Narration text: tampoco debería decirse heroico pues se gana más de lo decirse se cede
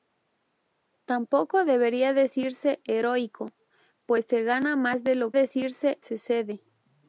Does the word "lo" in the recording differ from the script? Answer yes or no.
no